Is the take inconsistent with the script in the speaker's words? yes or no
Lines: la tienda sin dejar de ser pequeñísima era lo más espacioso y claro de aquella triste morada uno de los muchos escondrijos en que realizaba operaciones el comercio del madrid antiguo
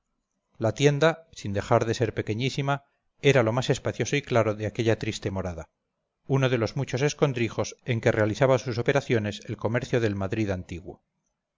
yes